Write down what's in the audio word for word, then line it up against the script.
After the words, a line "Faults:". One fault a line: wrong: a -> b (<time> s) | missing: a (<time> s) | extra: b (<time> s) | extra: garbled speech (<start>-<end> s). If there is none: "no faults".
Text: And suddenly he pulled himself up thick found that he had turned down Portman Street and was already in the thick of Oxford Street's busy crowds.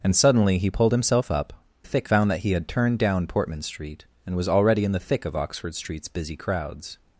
And suddenly he pulled himself up thick found that he had turned down Portman Street and was already in the thick of Oxford Street's busy crowds.
Faults:
no faults